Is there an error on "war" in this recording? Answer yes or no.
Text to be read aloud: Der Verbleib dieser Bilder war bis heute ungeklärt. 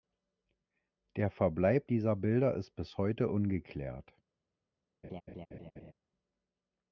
yes